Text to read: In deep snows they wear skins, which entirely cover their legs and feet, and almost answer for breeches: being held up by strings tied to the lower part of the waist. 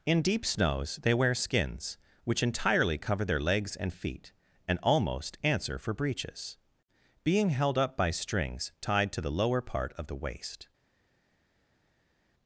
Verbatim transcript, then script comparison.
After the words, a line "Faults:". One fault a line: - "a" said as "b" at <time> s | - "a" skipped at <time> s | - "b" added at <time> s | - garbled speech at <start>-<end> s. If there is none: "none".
In deep snows they wear skins, which entirely cover their legs and feet, and almost answer for breeches: being held up by strings tied to the lower part of the waist.
Faults:
none